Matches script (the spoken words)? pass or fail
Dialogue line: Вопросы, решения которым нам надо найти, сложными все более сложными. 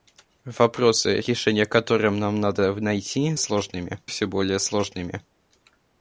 pass